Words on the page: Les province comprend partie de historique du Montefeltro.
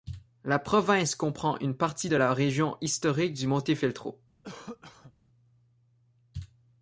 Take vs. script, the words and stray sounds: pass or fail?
fail